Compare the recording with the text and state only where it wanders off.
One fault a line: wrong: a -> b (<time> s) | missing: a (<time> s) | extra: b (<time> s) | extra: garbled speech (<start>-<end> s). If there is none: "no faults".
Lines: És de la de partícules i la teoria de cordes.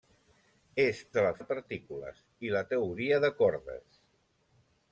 no faults